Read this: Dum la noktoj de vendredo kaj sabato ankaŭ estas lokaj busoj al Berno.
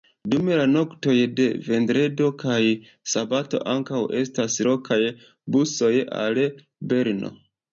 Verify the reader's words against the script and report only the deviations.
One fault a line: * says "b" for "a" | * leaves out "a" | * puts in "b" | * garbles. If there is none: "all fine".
all fine